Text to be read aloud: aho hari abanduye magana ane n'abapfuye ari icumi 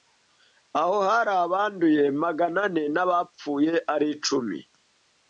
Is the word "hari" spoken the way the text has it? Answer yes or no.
yes